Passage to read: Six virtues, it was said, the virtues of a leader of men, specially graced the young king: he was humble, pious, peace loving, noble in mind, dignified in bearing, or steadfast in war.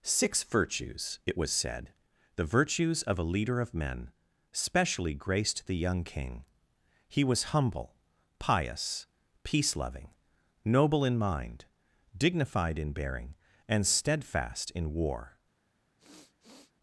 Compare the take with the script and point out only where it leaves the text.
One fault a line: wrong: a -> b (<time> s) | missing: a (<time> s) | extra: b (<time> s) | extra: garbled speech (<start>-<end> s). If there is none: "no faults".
wrong: or -> and (13.7 s)